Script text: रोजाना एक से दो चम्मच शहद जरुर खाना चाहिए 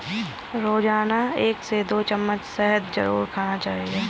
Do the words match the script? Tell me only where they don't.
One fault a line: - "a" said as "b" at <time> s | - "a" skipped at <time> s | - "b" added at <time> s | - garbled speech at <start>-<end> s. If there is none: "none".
none